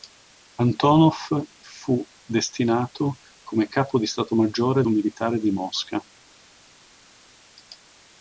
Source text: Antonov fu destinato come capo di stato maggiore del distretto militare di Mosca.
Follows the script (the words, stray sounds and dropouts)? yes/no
no